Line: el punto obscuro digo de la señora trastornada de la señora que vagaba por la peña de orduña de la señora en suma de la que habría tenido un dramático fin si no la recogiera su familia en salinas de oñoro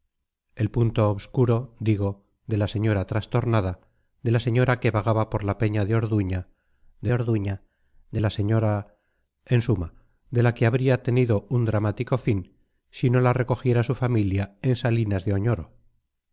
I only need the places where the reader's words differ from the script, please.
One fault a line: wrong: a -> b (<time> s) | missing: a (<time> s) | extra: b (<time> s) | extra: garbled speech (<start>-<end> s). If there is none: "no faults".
extra: orduña de (7.1 s)